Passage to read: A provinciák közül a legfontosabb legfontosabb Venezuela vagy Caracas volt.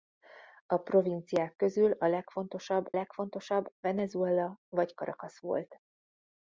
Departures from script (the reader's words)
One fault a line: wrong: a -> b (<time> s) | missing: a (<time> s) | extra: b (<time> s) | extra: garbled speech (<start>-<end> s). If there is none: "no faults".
no faults